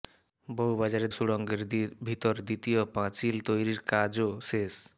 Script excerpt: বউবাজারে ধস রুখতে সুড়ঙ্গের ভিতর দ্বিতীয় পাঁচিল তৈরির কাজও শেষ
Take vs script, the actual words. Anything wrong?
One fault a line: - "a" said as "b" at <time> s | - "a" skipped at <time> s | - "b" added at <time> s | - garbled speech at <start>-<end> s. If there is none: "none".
- "ধস রুখতে" skipped at 1.1 s